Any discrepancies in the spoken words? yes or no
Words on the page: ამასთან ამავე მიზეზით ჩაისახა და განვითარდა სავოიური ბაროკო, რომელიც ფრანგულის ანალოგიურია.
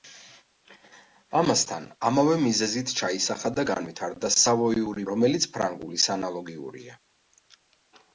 yes